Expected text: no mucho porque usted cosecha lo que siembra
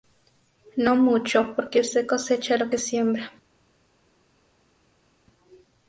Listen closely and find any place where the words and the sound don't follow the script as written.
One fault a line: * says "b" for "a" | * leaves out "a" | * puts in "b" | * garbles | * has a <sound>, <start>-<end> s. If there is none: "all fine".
all fine